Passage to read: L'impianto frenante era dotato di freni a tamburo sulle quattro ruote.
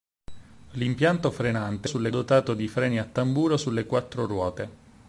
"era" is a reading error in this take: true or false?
true